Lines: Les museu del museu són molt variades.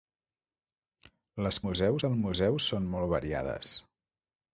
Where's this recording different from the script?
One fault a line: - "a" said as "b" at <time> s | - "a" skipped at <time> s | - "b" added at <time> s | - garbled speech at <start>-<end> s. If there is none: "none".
none